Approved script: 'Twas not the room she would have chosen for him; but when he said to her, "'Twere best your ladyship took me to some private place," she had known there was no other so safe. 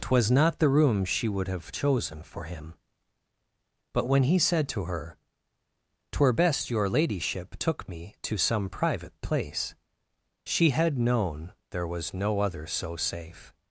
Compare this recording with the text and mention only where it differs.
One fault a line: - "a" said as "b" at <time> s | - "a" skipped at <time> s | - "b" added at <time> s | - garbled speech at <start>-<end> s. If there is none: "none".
none